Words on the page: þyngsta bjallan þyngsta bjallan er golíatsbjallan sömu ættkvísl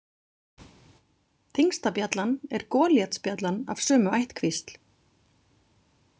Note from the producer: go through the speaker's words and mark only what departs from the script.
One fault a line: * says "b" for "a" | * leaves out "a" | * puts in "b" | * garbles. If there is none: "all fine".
* leaves out "þyngsta bjallan"
* puts in "af"